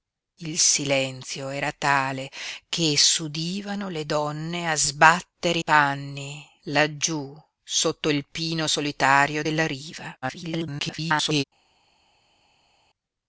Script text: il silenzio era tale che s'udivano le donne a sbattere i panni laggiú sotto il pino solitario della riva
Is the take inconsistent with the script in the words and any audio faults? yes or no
yes